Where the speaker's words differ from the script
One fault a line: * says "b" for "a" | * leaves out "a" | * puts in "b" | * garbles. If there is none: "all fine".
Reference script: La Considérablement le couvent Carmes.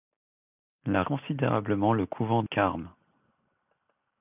all fine